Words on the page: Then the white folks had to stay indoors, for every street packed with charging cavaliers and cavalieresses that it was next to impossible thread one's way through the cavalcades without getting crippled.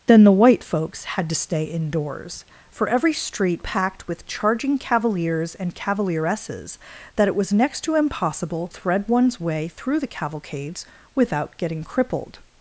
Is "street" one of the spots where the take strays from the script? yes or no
no